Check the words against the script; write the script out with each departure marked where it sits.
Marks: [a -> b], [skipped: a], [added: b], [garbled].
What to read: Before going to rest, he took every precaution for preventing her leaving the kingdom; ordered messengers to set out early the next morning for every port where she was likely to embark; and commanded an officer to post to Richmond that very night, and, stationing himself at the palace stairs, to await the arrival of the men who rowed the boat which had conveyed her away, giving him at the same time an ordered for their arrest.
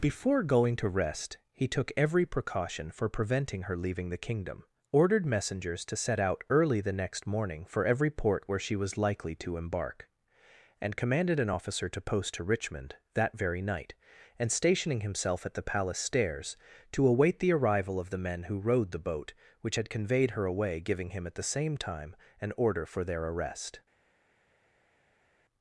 Before going to rest, he took every precaution for preventing her leaving the kingdom; ordered messengers to set out early the next morning for every port where she was likely to embark; and commanded an officer to post to Richmond that very night, and, stationing himself at the palace stairs, to await the arrival of the men who rowed the boat which had conveyed her away, giving him at the same time an [ordered -> order] for their arrest.